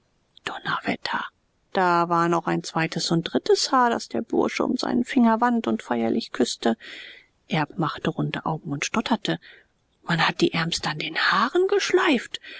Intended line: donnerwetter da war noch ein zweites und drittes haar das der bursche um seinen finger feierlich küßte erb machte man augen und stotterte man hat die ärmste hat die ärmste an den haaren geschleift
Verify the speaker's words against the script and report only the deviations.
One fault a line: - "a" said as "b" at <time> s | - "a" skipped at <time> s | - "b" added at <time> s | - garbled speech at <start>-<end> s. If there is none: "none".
- "wand und" added at 5.4 s
- "man" said as "runde" at 8.1 s
- "hat die ärmste" skipped at 10.9 s